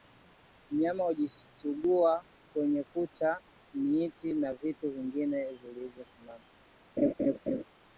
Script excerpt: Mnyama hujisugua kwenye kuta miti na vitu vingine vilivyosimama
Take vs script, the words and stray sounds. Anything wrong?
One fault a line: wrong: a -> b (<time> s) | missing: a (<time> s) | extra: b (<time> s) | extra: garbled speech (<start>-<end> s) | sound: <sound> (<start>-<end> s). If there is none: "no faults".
sound: laugh (7.0-7.6 s)